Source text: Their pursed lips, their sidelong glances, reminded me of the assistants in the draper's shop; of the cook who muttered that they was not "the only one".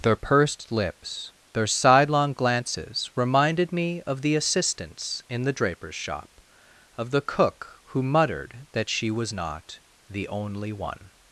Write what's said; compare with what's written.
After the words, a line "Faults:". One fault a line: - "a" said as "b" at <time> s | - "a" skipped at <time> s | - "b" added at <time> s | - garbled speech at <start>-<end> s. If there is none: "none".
Their pursed lips, their sidelong glances, reminded me of the assistants in the draper's shop; of the cook who muttered that she was not "the only one".
Faults:
- "they" said as "she" at 8.9 s